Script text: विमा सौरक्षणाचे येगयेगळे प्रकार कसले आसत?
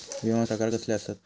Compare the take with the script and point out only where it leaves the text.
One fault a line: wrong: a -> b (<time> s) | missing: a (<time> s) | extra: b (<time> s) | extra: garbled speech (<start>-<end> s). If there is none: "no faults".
missing: सौरक्षणाचे येगयेगळे (0.5 s)